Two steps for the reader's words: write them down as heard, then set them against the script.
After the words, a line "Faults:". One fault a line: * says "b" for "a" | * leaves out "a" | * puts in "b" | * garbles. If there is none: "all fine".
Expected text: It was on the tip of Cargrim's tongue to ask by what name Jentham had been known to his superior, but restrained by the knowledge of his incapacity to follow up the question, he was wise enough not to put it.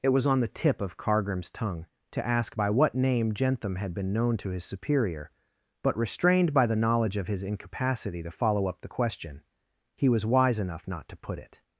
It was on the tip of Cargrim's tongue to ask by what name Jentham had been known to his superior, but restrained by the knowledge of his incapacity to follow up the question, he was wise enough not to put it.
Faults:
all fine